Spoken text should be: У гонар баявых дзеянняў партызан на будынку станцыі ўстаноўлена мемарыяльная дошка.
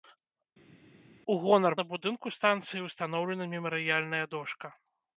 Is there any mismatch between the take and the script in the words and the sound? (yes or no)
yes